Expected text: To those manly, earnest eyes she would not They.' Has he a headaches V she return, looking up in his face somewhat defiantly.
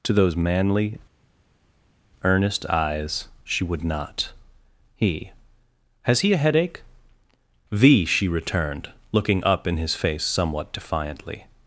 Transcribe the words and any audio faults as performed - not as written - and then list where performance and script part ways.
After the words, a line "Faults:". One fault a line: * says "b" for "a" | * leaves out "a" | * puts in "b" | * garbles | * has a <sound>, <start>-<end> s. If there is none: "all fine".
To those manly, earnest eyes she would not He.' Has he a headache V she returned, looking up in his face somewhat defiantly.
Faults:
* says "He" for "They"
* says "headache" for "headaches"
* says "returned" for "return"